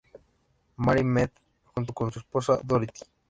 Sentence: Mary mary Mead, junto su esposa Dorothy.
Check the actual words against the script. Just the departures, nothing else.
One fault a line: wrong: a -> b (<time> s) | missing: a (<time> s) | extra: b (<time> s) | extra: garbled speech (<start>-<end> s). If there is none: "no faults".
missing: mary (1.0 s)
extra: con (1.9 s)